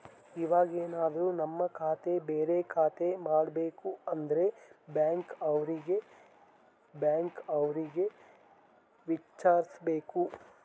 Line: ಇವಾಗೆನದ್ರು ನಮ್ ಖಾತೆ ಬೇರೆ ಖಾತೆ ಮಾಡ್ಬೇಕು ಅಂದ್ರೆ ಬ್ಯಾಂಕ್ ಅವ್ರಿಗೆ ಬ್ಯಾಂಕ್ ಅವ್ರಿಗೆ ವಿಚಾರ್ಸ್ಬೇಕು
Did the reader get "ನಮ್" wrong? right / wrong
right